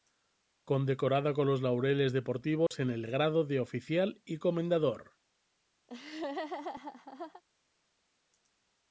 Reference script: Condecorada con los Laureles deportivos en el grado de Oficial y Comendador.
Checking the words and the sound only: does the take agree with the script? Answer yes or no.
no